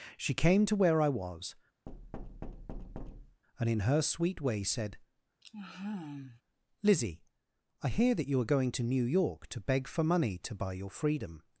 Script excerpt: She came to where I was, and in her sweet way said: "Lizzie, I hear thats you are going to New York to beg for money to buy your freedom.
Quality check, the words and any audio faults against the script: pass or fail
fail